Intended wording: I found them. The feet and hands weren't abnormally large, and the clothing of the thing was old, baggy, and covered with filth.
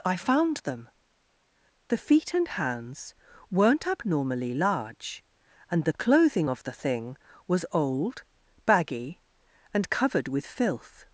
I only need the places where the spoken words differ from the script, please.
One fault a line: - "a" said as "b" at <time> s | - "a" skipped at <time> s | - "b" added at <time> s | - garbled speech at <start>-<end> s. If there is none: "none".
none